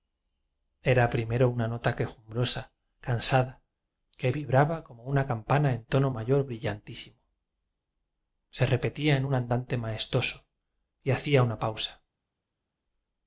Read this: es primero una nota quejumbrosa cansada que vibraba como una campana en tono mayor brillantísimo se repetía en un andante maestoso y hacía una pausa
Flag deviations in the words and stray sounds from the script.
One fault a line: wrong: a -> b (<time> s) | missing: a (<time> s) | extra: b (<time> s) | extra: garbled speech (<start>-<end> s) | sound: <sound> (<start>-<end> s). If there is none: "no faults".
wrong: es -> era (0.8 s)